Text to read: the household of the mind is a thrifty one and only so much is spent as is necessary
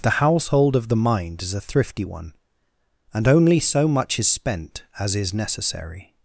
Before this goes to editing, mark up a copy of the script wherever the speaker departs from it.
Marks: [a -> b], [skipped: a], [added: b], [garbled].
the household of the mind is a thrifty one and only so much is spent as is necessary